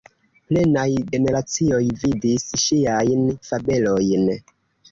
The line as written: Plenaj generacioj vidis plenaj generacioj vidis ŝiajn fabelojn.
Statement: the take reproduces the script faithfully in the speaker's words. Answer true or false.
false